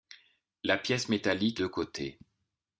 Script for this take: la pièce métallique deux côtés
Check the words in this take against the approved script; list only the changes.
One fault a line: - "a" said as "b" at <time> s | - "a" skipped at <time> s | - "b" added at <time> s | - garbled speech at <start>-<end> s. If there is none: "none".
none